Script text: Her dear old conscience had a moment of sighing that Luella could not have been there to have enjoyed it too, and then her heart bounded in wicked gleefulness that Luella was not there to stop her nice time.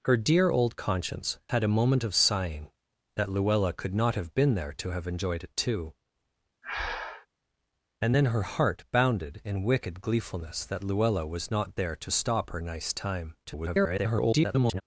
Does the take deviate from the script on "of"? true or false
false